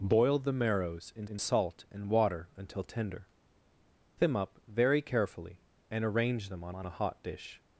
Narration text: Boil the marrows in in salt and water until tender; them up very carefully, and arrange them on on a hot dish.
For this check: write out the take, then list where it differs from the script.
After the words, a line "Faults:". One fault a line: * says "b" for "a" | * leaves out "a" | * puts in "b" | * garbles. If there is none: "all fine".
Boil the marrows in in salt and water until tender; them up very carefully, and arrange them on on a hot dish.
Faults:
all fine